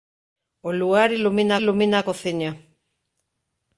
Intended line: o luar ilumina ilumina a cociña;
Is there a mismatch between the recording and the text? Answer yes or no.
no